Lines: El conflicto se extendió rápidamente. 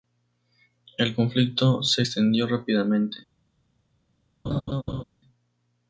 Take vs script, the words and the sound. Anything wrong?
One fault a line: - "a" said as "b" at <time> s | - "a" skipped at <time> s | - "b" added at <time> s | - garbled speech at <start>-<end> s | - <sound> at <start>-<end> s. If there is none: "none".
- laugh at 4.4-5.0 s